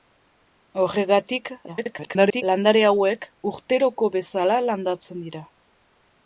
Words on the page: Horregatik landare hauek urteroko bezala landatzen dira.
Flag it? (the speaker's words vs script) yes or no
yes